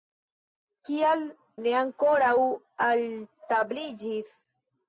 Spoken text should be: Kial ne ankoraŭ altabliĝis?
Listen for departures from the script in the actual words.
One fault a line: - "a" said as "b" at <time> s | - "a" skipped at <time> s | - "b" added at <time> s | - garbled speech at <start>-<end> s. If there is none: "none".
none